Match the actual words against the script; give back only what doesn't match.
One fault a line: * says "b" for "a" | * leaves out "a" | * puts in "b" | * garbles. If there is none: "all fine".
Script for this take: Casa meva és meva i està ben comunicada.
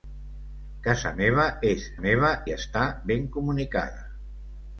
all fine